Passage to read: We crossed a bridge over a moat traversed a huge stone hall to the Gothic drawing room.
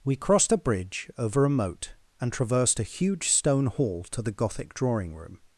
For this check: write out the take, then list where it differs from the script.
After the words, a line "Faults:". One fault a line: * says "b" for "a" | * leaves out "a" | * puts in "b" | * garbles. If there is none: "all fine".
We crossed a bridge over a moat and traversed a huge stone hall to the Gothic drawing room.
Faults:
* puts in "and"